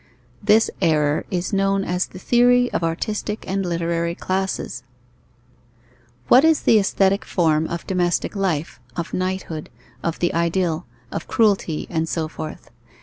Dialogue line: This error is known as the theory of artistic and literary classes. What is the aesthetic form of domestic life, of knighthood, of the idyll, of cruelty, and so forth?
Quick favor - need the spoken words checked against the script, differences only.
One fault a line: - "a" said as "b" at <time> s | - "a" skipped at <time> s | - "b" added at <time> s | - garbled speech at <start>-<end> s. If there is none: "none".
none